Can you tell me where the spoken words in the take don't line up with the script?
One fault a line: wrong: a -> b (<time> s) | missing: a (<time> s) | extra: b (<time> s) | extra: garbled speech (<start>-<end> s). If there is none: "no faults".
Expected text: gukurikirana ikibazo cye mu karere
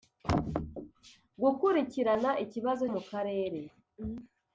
missing: cye (2.9 s)